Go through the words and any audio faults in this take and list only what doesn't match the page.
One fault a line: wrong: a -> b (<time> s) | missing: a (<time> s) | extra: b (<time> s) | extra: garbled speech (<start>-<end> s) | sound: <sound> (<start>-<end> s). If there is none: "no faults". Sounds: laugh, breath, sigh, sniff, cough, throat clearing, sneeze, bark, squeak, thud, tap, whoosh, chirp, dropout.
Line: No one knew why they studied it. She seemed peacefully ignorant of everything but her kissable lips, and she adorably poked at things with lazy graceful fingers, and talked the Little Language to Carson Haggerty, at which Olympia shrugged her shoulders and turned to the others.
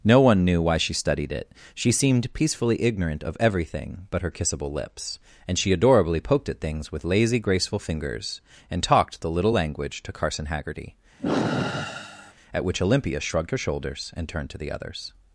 wrong: they -> she (0.8 s)
sound: sigh (11.2-12.3 s)